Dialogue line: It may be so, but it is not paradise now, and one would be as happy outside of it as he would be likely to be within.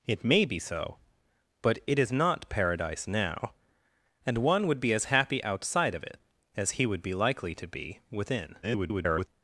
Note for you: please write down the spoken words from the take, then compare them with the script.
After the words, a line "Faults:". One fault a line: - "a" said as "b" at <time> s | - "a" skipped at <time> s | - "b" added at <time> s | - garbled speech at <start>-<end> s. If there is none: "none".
It may be so, but it is not paradise now, and one would be as happy outside of it as he would be likely to be within. [garbled]
Faults:
- garbled speech at 8.6-9.3 s